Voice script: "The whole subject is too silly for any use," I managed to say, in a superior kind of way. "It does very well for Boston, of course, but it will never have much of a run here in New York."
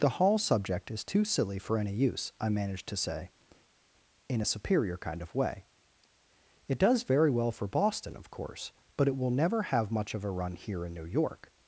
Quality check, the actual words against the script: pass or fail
fail